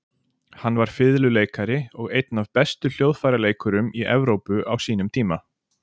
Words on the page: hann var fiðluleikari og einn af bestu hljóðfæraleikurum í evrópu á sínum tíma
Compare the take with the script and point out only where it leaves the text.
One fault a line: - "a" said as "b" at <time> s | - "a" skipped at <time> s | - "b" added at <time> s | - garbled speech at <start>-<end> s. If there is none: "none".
none